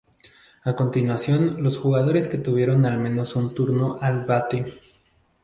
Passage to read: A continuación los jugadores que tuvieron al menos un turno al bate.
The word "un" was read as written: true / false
true